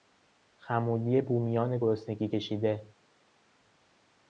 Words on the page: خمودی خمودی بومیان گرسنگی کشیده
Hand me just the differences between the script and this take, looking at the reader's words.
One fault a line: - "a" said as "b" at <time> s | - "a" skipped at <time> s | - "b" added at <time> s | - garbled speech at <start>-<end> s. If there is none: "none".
- "خمودی" skipped at 1.2 s